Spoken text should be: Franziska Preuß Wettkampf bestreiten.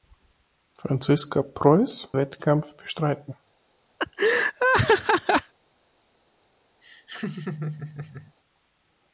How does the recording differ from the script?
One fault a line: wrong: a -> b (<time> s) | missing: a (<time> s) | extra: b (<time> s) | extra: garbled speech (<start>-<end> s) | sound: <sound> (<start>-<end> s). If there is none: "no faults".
sound: laugh (4.0-5.5 s)
sound: laugh (6.8-8.3 s)